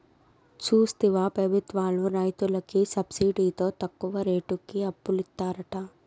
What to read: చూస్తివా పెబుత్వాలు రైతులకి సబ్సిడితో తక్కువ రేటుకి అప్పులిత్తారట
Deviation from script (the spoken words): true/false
false